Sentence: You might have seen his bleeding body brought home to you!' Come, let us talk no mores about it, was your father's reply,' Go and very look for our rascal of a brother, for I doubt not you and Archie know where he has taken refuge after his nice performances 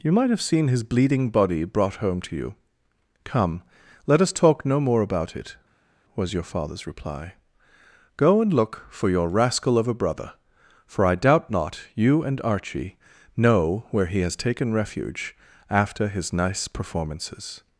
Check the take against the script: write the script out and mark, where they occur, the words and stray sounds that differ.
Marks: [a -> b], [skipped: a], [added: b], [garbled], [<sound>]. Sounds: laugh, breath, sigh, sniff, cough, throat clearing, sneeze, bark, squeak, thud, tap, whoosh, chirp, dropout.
You might have seen his bleeding body brought home to you!' Come, let us talk no [mores -> more] about it, was your father's reply,' Go and [skipped: very] look for [our -> your] rascal of a brother, for I doubt not you and Archie know where he has taken refuge after his nice performances